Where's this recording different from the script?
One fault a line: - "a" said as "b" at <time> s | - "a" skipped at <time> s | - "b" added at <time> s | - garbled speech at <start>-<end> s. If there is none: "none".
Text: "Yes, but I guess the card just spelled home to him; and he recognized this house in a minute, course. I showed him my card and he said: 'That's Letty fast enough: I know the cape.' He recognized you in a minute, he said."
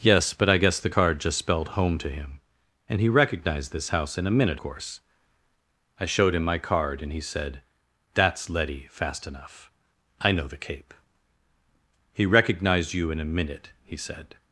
none